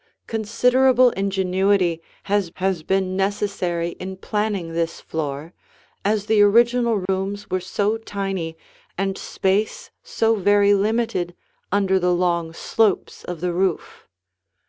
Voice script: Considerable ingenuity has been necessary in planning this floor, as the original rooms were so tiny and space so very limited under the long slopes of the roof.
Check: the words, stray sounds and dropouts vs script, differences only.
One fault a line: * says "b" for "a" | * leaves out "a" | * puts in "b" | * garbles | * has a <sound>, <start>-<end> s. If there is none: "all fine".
* puts in "has"
* has a dropout, 7.1-7.1 s